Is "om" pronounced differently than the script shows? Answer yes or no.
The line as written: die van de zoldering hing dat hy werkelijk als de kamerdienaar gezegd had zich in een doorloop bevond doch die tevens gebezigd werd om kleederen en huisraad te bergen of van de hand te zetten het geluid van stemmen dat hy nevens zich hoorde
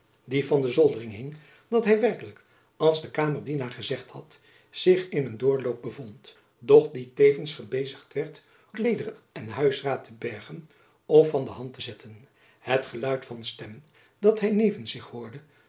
yes